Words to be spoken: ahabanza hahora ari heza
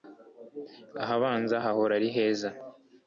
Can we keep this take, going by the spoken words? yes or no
yes